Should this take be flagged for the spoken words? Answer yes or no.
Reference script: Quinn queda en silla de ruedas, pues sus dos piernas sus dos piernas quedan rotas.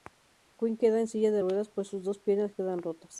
yes